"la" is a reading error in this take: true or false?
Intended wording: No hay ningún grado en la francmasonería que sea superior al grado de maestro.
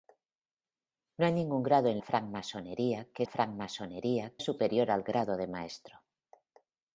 true